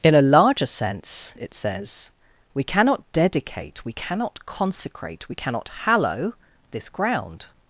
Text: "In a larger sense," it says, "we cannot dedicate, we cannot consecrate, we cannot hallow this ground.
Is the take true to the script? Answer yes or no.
yes